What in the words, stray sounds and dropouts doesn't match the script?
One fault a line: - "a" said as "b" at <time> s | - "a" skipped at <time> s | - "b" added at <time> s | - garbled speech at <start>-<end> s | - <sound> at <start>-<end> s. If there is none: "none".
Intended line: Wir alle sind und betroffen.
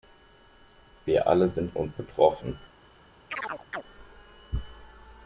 - chirp at 3.3-3.8 s